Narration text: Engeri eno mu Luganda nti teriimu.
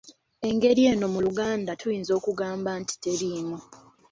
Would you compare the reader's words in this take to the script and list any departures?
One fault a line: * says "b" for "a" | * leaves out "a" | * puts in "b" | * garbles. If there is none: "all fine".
* puts in "tuyinza okugamba"